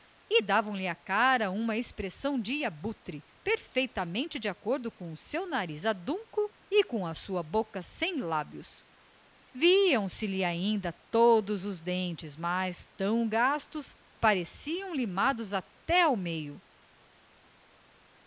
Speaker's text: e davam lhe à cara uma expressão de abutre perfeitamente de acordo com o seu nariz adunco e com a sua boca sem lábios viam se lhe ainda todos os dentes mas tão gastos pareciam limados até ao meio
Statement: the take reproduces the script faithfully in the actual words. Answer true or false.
true